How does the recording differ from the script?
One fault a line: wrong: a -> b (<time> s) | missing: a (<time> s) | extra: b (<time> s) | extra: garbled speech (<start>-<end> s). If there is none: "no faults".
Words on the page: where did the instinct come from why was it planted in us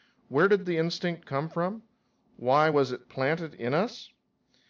no faults